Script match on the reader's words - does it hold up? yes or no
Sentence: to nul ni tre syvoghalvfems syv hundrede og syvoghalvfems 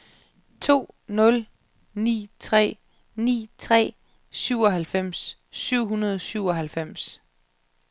no